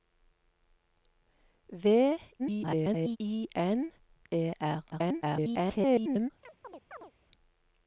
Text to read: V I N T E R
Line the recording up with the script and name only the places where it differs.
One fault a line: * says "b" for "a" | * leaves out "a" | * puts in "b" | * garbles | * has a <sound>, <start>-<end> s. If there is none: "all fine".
* garbles
* leaves out "T"
* garbles
* has a chirp, 6.4-7.1 s